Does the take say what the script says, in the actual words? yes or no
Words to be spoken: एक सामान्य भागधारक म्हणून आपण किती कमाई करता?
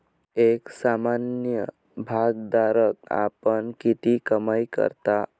no